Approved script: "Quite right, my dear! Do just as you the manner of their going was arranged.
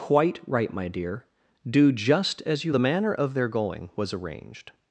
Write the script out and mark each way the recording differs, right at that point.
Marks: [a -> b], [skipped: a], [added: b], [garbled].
"Quite right, my dear! Do just as you the manner of their going was arranged.